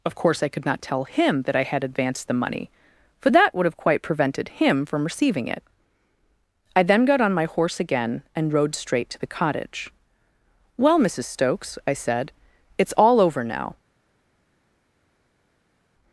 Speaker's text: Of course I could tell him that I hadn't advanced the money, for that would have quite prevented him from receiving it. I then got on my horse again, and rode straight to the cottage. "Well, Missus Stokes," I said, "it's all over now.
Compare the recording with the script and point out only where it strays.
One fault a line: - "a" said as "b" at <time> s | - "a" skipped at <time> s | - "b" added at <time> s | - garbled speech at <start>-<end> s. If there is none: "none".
- "not" added at 0.7 s
- "hadn't" said as "had" at 1.6 s